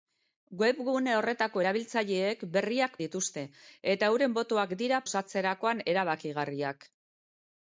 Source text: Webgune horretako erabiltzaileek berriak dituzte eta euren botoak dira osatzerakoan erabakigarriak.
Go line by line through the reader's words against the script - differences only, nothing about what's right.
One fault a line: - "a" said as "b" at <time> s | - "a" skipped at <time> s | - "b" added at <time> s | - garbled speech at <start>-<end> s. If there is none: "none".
none